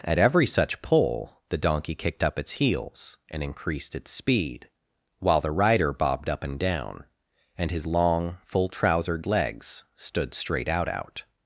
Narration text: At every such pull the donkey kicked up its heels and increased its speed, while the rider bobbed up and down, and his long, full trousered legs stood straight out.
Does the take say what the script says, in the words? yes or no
no